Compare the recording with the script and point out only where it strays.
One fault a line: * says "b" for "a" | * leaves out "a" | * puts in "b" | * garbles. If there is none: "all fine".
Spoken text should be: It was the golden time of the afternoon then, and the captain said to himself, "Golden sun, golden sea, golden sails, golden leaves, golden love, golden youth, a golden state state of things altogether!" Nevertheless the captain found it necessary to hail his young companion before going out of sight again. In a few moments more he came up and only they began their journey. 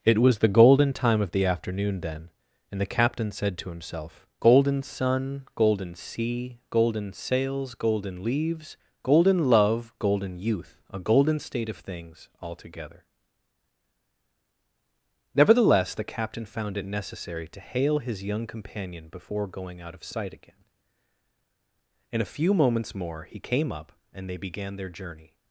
* leaves out "state"
* leaves out "only"